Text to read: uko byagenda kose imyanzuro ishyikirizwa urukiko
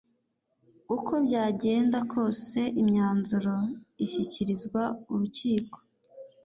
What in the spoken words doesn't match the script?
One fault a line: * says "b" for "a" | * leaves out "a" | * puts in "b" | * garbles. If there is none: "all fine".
all fine